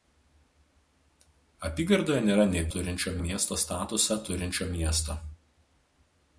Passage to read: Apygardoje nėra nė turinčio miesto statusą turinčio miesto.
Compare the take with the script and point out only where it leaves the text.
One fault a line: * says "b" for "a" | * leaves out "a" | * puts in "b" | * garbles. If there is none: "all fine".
all fine